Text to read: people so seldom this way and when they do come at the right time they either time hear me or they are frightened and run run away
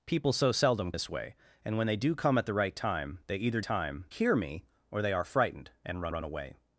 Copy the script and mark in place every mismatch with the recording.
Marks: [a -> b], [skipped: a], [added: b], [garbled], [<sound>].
people so seldom this way and when they do come at the right time they either time hear me or they are frightened and run run away